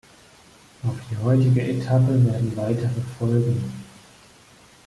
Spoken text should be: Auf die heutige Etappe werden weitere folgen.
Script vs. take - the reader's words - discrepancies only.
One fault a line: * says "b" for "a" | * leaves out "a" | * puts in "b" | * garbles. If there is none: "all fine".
all fine